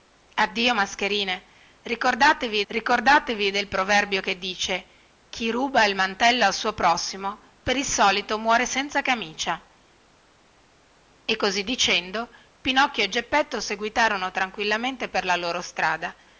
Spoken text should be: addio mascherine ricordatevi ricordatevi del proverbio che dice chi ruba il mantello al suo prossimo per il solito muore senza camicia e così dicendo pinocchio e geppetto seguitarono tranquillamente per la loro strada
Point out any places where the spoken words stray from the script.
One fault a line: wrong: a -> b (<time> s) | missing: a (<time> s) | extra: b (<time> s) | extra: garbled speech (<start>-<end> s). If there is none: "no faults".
no faults